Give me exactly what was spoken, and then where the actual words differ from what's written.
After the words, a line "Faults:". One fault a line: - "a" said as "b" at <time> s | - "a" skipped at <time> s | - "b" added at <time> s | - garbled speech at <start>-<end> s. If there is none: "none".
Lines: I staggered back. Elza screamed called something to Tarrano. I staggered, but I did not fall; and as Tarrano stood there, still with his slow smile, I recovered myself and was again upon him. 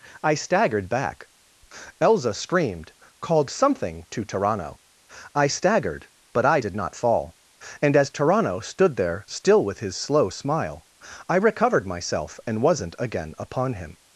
I staggered back. Elza screamed called something to Tarrano. I staggered, but I did not fall; and as Tarrano stood there, still with his slow smile, I recovered myself and wasn't again upon him.
Faults:
- "was" said as "wasn't" at 12.6 s